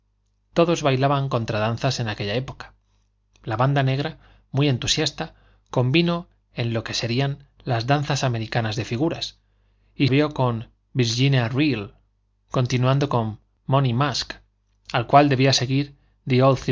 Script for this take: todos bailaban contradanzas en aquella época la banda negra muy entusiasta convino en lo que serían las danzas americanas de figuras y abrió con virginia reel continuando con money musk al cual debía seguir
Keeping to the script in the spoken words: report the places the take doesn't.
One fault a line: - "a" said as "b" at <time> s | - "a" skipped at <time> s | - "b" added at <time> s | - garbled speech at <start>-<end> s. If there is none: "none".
none